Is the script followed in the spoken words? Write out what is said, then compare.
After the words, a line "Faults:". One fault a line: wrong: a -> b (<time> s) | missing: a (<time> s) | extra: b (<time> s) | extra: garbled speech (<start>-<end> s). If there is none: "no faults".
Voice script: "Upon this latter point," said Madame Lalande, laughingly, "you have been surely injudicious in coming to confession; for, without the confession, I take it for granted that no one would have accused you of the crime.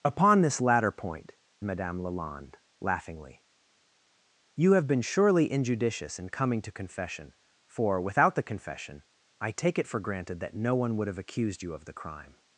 "Upon this latter point," Madame Lalande, laughingly, "you have been surely injudicious in coming to confession; for, without the confession, I take it for granted that no one would have accused you of the crime.
Faults:
missing: said (1.4 s)